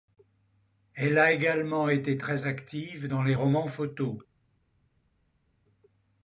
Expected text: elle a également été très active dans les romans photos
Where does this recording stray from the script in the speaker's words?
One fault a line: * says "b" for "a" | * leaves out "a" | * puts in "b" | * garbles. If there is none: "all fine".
all fine